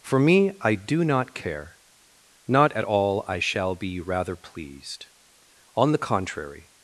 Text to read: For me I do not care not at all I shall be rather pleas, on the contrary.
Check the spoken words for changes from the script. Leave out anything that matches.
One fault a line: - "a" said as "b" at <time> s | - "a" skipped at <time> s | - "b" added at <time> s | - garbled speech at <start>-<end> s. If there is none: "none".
- "pleas" said as "pleased" at 4.3 s